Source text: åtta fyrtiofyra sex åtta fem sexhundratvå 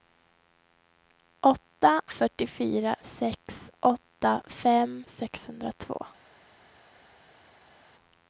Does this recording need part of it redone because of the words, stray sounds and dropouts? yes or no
no